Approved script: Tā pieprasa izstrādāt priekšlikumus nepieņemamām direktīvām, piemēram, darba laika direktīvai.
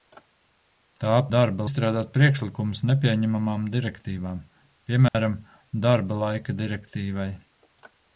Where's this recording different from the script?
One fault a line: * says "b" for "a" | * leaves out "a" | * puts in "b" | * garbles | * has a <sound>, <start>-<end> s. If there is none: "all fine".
* says "darba" for "pieprasa"
* has a dropout, 5.1-5.1 s